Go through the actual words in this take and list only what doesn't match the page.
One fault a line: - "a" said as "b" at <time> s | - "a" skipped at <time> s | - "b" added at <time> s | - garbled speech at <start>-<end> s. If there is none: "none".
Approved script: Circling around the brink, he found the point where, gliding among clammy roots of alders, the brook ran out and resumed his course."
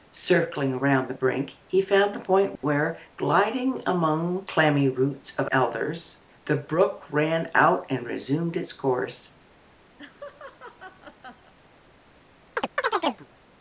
- "his" said as "its" at 8.5 s